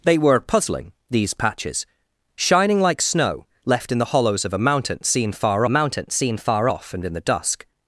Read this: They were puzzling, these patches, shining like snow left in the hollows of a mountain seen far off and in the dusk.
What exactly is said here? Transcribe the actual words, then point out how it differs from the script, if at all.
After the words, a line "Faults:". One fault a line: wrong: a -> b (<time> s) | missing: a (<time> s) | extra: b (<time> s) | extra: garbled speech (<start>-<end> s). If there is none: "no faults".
They were puzzling, these patches, shining like snow left in the hollows of a mountain seen far mountain seen far off and in the dusk.
Faults:
extra: mountain seen far (5.7 s)